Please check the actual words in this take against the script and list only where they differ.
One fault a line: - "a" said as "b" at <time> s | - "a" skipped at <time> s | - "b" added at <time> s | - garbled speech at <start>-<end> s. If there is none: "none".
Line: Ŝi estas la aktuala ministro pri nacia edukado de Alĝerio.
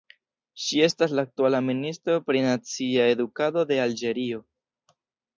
none